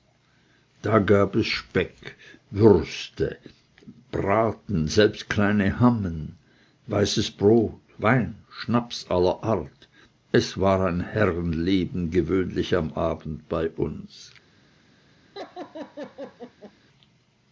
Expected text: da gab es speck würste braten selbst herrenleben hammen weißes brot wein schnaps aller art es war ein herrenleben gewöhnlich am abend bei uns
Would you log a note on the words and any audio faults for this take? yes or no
yes